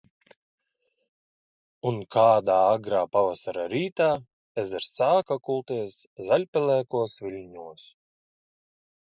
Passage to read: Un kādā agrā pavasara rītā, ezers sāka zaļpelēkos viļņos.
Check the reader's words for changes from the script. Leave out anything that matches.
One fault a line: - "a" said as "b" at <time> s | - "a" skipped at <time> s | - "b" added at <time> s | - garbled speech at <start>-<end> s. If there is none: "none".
- "kulties" added at 5.5 s